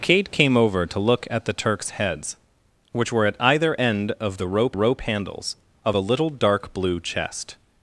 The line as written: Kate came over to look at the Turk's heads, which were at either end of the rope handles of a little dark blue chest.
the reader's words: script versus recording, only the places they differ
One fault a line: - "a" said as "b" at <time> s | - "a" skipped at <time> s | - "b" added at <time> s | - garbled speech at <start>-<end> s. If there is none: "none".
- "rope" added at 4.7 s